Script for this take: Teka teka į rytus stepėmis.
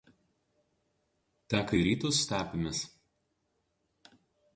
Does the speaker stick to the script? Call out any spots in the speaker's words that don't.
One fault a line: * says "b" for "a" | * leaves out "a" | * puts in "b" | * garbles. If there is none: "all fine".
* leaves out "teka"